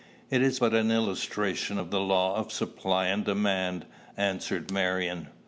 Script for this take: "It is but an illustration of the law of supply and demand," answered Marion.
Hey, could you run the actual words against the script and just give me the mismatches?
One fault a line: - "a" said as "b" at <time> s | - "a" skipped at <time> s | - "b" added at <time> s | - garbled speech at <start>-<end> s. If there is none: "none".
none